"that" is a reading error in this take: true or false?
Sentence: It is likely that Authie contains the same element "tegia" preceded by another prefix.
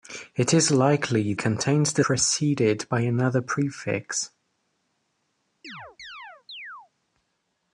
true